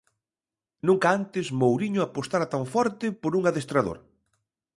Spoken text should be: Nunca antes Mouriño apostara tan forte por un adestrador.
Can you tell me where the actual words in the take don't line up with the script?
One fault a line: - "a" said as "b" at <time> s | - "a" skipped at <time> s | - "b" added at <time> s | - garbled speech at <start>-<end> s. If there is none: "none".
none